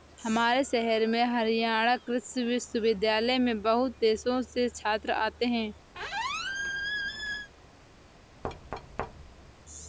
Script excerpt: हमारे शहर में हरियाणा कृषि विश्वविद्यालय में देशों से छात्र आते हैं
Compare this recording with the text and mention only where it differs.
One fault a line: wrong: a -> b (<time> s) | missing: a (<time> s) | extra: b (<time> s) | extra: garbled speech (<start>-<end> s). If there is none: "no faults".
extra: बहुत (3.6 s)